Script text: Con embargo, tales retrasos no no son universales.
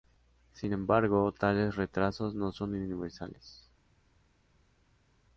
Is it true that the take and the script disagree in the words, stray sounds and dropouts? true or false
true